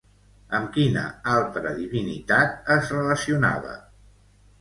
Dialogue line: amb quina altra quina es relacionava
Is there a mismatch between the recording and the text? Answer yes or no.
yes